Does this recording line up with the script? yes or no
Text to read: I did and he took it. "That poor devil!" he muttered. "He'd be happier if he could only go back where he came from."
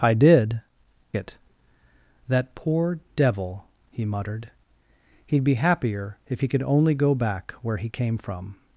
no